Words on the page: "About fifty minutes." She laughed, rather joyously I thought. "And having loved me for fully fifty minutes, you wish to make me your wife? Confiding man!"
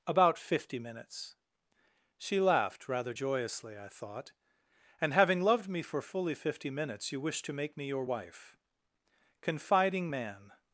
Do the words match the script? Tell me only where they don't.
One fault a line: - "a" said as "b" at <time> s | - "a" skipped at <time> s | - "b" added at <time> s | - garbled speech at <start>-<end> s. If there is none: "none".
none